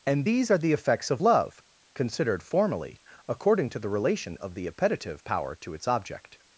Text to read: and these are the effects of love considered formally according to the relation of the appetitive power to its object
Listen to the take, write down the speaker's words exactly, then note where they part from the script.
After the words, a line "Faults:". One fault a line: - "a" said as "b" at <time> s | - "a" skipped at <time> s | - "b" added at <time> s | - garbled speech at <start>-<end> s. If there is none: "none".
and these are the effects of love considered formally according to the relation of the appetitive power to its object
Faults:
none